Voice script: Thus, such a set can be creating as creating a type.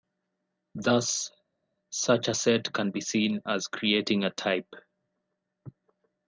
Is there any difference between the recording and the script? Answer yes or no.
yes